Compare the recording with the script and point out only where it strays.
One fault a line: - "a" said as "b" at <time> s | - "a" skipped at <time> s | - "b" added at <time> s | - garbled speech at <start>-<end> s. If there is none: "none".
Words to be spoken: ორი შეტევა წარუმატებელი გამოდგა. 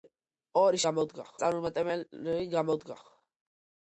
- "შეტევა" said as "გამოდგა" at 0.9 s